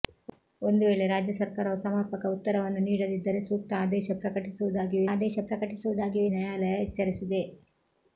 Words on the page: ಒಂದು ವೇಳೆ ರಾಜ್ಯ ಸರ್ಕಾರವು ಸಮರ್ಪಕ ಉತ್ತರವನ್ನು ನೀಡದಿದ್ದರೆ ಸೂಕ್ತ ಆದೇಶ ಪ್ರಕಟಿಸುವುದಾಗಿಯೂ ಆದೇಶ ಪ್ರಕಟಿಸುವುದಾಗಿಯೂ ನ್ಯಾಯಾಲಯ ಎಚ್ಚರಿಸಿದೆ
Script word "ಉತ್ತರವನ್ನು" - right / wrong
right